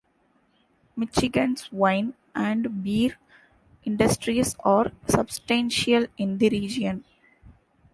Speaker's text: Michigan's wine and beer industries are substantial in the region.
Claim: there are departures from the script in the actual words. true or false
false